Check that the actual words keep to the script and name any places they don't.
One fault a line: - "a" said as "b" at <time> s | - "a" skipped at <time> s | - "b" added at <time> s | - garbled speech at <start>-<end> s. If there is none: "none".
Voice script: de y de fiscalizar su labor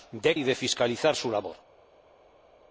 none